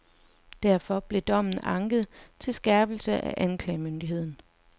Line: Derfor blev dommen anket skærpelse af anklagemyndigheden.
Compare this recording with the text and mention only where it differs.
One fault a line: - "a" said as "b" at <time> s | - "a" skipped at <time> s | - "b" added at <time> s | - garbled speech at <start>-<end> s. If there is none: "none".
- "til" added at 2.4 s